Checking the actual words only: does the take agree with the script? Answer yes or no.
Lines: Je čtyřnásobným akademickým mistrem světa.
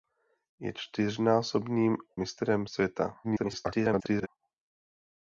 no